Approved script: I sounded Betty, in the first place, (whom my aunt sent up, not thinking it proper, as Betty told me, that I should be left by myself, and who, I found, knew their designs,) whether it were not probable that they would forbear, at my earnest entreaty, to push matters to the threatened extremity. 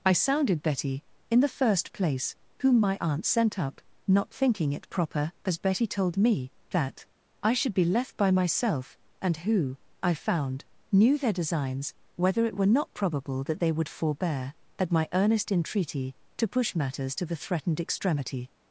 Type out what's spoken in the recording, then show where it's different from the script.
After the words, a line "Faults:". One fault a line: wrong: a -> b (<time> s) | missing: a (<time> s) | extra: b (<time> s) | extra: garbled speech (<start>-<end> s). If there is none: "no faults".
I sounded Betty, in the first place, (whom my aunt sent up, not thinking it proper, as Betty told me, that I should be left by myself, and who, I found, knew their designs,) whether it were not probable that they would forbear, at my earnest entreaty, to push matters to the threatened extremity.
Faults:
no faults